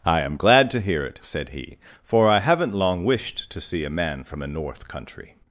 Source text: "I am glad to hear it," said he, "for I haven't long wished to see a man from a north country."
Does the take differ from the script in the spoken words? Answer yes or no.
no